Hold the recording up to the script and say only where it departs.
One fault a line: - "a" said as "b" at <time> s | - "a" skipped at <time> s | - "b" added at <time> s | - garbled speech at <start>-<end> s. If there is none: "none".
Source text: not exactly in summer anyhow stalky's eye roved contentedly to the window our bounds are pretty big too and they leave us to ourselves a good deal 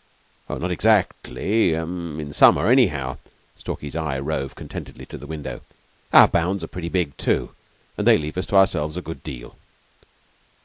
none